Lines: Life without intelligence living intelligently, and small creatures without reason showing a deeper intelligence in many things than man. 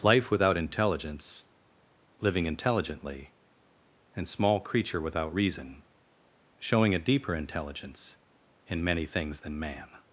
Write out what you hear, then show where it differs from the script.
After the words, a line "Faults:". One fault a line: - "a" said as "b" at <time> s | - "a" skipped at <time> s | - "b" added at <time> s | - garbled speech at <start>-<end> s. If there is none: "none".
Life without intelligence living intelligently, and small creature without reason showing a deeper intelligence in many things than man.
Faults:
- "creatures" said as "creature" at 4.6 s